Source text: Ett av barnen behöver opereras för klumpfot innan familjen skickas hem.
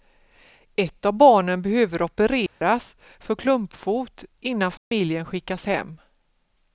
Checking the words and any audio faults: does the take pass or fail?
fail